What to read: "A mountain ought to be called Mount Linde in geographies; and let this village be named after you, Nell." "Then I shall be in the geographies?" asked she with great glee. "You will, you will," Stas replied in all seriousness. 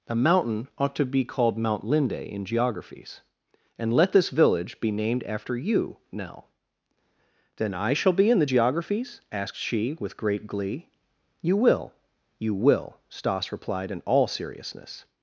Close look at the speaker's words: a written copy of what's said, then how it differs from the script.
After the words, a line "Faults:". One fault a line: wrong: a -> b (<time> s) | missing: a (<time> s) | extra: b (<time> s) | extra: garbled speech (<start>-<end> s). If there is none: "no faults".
"A mountain ought to be called Mount Linde in geographies; and let this village be named after you, Nell." "Then I shall be in the geographies?" asked she with great glee. "You will, you will," Stas replied in all seriousness.
Faults:
no faults